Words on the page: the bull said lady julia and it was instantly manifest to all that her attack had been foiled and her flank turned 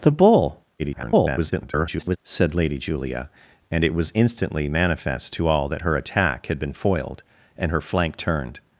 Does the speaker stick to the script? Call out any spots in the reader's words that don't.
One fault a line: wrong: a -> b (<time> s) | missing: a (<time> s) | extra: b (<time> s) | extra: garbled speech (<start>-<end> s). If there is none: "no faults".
extra: garbled speech (0.8-2.2 s)